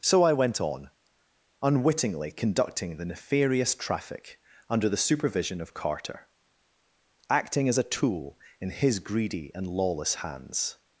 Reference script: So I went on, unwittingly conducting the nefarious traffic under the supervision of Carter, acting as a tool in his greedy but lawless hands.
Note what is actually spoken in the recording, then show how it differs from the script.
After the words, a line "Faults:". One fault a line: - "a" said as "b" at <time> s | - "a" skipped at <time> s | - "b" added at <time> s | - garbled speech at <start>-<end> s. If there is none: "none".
So I went on, unwittingly conducting the nefarious traffic under the supervision of Carter, acting as a tool in his greedy and lawless hands.
Faults:
- "but" said as "and" at 9.5 s